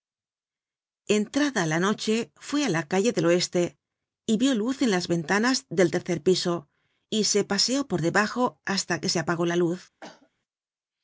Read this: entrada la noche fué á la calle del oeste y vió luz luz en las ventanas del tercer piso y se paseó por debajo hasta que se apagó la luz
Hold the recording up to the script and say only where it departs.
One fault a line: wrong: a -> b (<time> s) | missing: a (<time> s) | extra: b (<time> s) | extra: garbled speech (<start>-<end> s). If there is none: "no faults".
missing: luz (4.8 s)